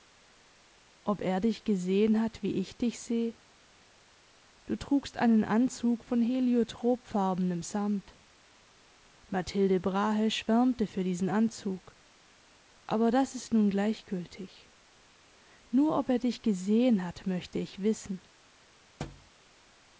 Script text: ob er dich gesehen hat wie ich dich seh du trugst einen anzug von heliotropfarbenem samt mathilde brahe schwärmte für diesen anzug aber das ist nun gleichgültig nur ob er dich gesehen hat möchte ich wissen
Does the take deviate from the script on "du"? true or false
false